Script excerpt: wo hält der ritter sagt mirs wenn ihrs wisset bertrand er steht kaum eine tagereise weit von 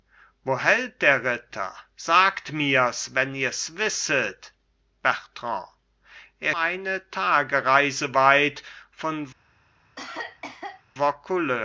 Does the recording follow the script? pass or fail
fail